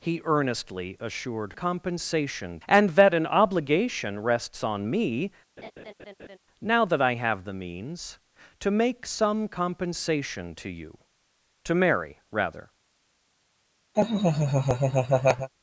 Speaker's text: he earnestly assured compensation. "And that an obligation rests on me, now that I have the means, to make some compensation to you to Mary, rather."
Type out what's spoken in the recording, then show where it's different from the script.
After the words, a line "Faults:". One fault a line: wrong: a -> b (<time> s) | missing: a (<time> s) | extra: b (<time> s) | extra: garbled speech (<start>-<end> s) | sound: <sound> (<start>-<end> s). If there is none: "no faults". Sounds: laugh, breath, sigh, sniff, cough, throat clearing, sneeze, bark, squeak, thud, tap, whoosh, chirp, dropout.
he earnestly assured compensation. "And that an obligation rests on me, now that I have the means, to make some compensation to you to Mary, rather."
Faults:
sound: laugh (5.6-6.4 s)
sound: laugh (13.9-15.5 s)